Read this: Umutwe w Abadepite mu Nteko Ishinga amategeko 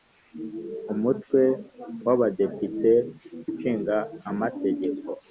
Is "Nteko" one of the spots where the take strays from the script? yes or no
yes